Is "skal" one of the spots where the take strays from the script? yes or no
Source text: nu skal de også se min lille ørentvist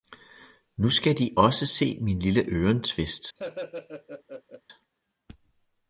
no